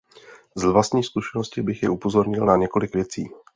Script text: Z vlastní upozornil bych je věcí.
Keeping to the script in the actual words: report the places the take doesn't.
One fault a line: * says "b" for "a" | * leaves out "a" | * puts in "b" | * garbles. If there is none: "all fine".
* says "zkušenosti" for "upozornil"
* puts in "upozornil na několik"